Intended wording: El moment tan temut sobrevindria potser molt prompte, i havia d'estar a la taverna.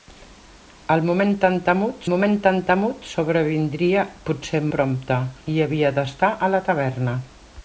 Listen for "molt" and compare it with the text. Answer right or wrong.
wrong